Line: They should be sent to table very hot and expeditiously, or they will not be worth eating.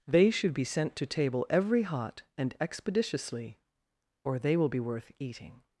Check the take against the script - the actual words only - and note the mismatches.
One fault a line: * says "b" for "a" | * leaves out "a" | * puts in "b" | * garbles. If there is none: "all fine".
* says "every" for "very"
* leaves out "not"